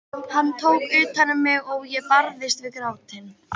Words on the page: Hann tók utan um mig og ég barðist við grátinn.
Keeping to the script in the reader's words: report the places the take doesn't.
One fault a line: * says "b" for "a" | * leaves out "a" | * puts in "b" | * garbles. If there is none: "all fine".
all fine